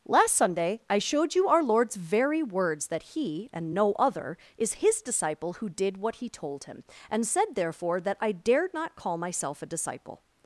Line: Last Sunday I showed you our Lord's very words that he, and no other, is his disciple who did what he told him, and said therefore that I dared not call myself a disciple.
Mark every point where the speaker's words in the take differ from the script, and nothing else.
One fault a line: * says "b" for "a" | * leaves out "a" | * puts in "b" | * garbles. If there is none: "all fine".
all fine